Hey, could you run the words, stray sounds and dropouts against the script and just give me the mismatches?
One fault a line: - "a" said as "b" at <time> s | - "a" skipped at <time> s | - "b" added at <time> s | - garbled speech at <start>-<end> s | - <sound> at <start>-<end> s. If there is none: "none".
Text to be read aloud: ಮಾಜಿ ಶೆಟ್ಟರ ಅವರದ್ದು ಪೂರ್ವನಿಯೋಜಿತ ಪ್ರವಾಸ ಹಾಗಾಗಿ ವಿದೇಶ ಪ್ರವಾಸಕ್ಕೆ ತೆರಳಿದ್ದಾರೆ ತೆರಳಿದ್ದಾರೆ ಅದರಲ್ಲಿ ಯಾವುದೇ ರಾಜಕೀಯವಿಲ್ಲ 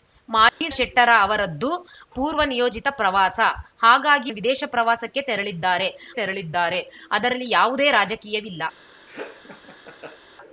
- dropout at 0.5-0.6 s
- laugh at 9.1-10.2 s